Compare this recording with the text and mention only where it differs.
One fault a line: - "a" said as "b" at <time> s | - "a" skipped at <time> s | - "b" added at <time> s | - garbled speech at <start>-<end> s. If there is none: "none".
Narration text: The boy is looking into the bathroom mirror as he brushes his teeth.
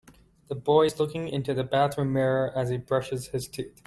none